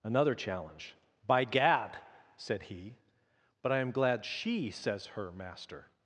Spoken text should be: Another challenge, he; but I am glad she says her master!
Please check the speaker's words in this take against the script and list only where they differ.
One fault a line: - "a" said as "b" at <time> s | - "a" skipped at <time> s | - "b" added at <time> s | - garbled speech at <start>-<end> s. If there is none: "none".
- "by gad said" added at 1.3 s